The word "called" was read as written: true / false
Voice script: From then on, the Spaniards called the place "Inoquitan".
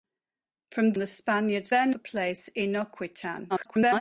false